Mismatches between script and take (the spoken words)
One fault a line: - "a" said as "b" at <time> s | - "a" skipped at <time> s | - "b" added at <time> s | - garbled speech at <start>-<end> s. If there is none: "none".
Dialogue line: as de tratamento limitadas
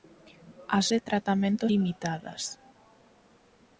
none